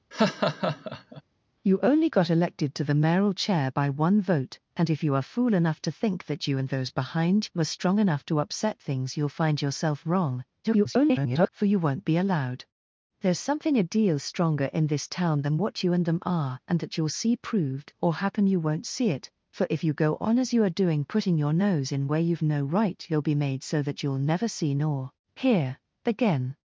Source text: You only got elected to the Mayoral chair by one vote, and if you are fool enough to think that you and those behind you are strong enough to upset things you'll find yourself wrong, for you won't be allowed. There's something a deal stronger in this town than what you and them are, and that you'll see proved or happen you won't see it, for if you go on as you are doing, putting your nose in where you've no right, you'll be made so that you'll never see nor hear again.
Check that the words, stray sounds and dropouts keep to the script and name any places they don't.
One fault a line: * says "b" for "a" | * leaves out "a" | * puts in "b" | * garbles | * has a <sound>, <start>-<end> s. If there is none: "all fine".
* has a laugh, 0.1-1.2 s
* garbles